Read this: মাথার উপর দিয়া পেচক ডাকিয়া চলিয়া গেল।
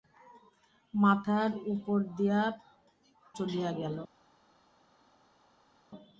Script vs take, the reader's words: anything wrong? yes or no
yes